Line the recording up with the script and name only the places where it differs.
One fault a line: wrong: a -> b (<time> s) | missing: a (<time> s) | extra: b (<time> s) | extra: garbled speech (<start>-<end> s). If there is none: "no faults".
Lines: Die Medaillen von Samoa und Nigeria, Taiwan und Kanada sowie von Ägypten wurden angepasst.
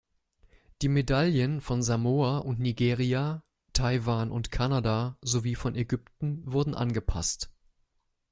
no faults